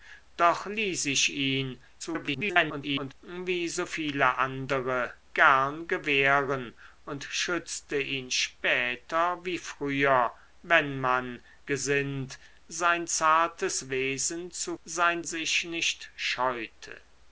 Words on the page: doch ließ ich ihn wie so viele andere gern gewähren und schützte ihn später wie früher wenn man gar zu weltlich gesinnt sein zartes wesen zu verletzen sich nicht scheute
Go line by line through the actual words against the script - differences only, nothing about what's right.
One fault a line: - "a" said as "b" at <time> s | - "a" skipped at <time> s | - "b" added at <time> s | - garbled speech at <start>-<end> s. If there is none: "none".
- garbled speech at 2.0-3.1 s
- "gar zu weltlich" skipped at 11.4 s
- "verletzen" said as "sein" at 14.8 s